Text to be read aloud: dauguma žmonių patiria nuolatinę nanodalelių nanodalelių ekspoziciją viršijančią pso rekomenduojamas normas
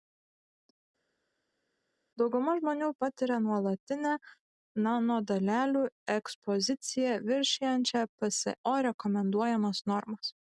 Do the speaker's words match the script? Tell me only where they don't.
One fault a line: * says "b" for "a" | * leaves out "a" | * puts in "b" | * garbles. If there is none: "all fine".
* leaves out "nanodalelių"